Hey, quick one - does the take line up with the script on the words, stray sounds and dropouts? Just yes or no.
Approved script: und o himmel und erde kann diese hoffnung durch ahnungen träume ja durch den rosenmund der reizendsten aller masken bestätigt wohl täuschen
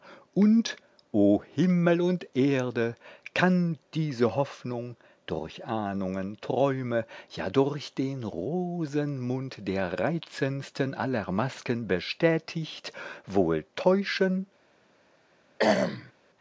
no